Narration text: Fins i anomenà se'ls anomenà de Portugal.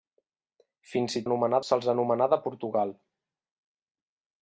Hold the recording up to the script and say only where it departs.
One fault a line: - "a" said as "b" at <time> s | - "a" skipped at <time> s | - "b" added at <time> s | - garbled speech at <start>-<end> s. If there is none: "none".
none